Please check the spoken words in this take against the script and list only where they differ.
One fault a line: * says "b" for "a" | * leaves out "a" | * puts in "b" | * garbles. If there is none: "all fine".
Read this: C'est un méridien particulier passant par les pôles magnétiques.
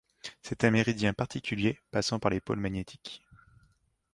all fine